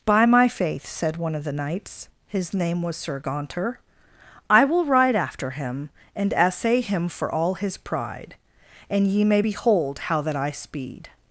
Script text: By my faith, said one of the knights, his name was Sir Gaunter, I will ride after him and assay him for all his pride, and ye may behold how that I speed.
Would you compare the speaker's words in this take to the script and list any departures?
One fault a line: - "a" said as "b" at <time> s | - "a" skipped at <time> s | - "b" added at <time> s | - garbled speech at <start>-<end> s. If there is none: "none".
none